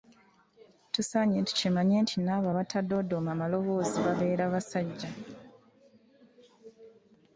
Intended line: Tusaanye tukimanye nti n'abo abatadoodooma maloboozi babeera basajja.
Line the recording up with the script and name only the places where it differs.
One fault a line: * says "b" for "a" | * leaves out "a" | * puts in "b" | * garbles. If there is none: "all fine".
all fine